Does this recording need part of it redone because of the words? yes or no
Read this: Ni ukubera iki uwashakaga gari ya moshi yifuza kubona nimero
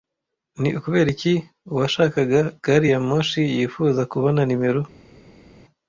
no